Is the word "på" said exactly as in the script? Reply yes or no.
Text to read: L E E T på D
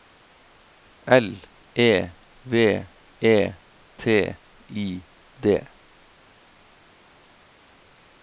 no